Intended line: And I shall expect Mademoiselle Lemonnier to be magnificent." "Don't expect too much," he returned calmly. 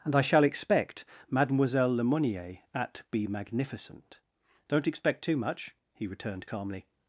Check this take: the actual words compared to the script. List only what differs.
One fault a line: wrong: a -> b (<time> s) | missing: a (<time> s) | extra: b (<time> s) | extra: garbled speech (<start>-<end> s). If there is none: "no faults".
wrong: to -> at (2.7 s)